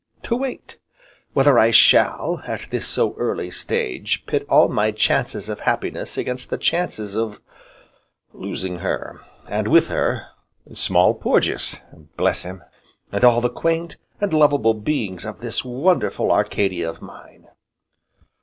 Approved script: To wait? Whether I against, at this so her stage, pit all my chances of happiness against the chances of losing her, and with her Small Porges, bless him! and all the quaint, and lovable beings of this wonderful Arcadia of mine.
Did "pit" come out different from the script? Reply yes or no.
no